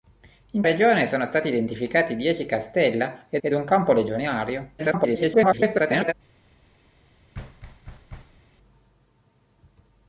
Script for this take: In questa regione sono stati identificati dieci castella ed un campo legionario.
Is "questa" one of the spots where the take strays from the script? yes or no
yes